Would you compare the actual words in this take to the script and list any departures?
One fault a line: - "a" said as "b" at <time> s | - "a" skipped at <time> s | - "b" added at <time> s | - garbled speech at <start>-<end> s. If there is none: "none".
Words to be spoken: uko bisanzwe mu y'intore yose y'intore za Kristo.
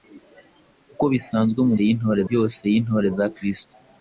none